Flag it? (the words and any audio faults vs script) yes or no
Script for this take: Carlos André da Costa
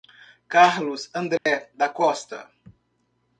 yes